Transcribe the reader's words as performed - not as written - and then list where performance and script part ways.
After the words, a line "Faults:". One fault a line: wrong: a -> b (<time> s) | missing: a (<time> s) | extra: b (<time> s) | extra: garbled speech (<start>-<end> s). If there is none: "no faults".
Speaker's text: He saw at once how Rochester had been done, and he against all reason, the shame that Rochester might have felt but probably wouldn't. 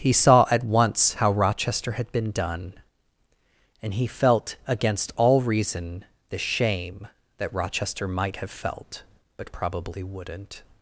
He saw at once how Rochester had been done, and he felt, against all reason, the shame that Rochester might have felt but probably wouldn't.
Faults:
extra: felt (4.1 s)